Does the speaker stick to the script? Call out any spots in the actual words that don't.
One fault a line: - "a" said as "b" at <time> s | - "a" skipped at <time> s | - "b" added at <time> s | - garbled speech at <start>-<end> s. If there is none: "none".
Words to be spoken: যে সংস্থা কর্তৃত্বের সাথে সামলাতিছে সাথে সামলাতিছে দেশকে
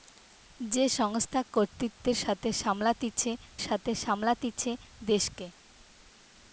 none